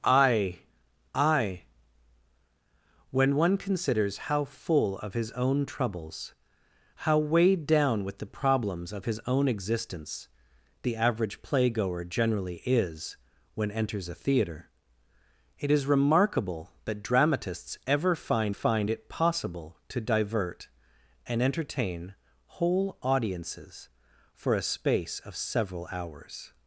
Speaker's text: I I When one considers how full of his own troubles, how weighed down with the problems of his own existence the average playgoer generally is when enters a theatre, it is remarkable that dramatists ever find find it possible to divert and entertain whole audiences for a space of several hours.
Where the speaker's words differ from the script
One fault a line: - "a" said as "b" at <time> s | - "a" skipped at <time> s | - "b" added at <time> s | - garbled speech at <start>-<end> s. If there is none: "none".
none